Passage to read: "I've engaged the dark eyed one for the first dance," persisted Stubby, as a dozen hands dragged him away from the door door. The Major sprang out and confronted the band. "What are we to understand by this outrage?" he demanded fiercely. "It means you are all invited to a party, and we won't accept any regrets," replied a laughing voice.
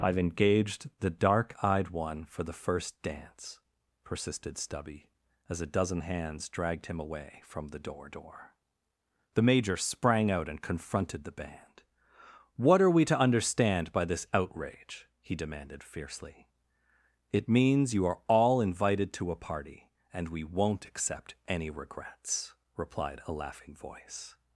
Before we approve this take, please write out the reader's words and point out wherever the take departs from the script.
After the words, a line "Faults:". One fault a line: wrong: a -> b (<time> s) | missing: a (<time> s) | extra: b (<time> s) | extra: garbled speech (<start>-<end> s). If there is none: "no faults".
"I've engaged the dark eyed one for the first dance," persisted Stubby, as a dozen hands dragged him away from the door door. The Major sprang out and confronted the band. "What are we to understand by this outrage?" he demanded fiercely. "It means you are all invited to a party, and we won't accept any regrets," replied a laughing voice.
Faults:
no faults